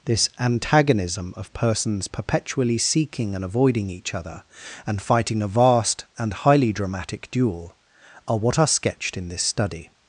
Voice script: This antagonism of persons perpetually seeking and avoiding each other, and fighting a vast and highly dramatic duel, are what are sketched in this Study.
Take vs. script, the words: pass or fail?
pass